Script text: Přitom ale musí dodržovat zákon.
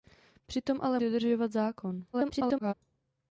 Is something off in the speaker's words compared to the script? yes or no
yes